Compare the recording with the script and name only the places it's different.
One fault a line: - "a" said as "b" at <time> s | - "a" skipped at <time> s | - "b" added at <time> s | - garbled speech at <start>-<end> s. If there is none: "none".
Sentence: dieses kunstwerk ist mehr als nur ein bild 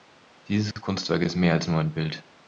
none